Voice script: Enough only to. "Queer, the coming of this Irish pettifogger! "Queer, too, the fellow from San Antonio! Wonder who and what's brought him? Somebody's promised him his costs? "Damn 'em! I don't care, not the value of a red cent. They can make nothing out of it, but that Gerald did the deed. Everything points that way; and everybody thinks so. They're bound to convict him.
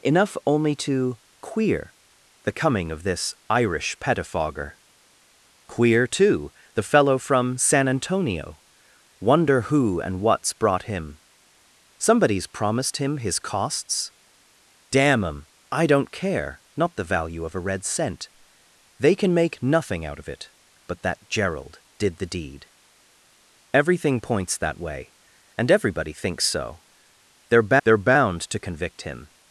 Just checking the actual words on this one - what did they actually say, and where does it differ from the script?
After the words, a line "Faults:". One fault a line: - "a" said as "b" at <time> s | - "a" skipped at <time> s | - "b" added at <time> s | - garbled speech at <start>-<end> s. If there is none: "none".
Enough only to. "Queer, the coming of this Irish pettifogger! "Queer, too, the fellow from San Antonio! Wonder who and what's brought him? Somebody's promised him his costs? "Damn 'em! I don't care, not the value of a red cent. They can make nothing out of it, but that Gerald did the deed. Everything points that way; and everybody thinks so. They're they're bound to convict him.
Faults:
- "they're" added at 27.8 s